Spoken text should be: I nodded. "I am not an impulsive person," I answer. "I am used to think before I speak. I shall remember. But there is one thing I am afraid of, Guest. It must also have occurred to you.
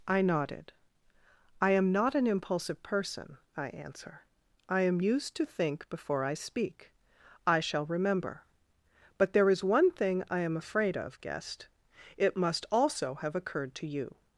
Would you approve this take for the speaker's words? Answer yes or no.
yes